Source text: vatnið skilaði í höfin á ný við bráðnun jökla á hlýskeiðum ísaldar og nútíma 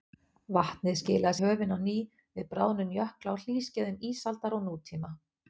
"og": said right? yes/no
yes